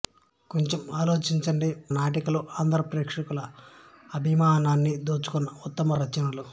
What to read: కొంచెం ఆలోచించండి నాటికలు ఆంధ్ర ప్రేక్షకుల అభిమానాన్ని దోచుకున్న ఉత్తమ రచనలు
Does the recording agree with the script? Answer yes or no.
yes